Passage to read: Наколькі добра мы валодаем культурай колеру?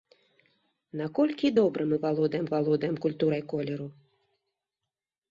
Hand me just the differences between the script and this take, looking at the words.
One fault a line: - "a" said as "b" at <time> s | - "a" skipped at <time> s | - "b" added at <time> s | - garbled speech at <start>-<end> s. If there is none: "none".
- "валодаем" added at 2.5 s